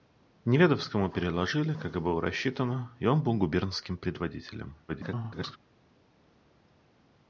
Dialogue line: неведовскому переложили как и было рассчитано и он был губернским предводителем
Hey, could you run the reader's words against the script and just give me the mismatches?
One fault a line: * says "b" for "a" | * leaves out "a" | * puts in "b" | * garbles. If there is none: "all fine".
* garbles